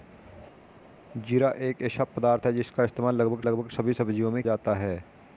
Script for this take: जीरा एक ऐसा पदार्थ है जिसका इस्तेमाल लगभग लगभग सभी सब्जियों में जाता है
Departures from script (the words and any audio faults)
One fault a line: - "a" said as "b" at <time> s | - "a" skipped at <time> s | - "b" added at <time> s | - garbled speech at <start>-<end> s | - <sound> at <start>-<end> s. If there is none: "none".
none